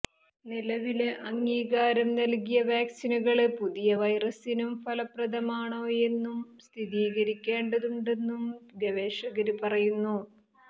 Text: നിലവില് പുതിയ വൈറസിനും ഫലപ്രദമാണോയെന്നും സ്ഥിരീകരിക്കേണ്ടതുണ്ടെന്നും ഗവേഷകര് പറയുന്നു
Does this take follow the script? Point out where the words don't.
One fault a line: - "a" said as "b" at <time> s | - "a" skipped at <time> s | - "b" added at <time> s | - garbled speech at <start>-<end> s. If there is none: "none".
- "അംഗീകാരം നല്കിയ വാക്സിനുകള്" added at 1.2 s